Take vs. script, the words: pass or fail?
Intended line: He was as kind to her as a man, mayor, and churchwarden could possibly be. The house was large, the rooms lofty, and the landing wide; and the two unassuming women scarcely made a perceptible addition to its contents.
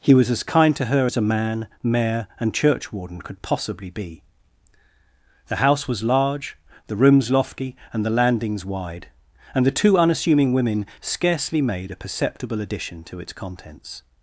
fail